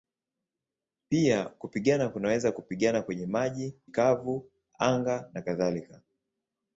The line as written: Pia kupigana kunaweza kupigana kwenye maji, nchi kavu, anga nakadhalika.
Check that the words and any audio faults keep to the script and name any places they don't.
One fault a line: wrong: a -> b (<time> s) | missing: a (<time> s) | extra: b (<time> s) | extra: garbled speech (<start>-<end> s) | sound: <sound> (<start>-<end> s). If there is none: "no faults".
missing: nchi (3.7 s)